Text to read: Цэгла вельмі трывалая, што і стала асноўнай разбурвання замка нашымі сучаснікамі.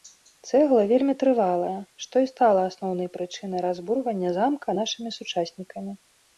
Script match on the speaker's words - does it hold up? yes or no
no